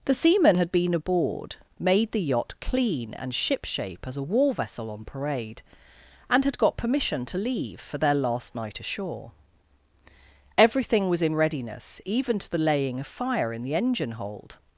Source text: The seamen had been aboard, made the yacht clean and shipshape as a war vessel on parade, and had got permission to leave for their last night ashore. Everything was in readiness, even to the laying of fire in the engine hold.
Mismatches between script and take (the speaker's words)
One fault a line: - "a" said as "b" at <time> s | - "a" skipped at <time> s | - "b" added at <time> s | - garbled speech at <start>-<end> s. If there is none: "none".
none